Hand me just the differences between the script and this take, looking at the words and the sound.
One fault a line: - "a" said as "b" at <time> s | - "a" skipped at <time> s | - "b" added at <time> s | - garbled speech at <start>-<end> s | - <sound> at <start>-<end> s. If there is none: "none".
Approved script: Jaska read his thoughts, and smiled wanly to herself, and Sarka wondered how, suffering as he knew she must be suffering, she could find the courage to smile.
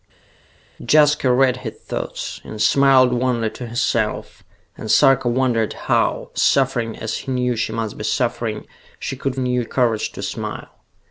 - "find" said as "knew" at 9.4 s